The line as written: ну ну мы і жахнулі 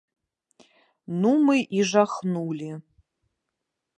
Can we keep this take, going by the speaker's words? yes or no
no